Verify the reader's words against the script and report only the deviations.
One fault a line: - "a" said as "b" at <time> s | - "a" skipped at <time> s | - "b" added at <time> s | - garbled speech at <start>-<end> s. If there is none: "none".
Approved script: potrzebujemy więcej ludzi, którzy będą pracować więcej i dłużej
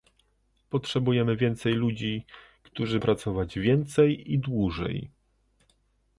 - "będą" skipped at 3.0 s